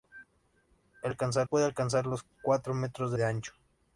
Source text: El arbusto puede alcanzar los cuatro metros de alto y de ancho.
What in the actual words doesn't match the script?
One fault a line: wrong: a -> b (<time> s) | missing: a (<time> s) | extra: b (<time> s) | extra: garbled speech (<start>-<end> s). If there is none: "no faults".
wrong: arbusto -> alcanzar (1.1 s)
missing: alto y (3.2 s)